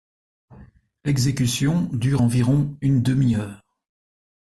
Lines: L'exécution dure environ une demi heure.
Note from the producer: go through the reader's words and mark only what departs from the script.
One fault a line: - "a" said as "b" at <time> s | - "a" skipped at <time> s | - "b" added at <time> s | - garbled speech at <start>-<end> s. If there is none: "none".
none